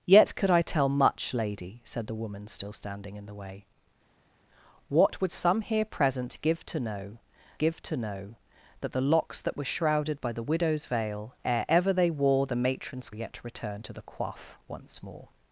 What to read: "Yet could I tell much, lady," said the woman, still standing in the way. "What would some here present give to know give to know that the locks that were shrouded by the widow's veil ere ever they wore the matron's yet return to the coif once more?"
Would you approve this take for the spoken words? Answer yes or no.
yes